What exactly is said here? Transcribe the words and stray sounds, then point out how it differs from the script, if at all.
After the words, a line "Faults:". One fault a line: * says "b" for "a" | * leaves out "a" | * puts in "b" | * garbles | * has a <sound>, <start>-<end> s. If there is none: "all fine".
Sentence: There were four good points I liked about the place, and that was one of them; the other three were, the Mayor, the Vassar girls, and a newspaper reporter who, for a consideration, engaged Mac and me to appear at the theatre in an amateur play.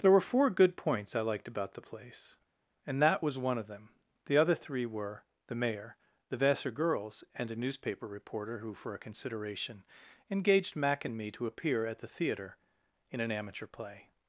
There were four good points I liked about the place, and that was one of them; the other three were, the Mayor, the Vassar girls, and a newspaper reporter who, for a consideration, engaged Mac and me to appear at the theatre in an amateur play.
Faults:
all fine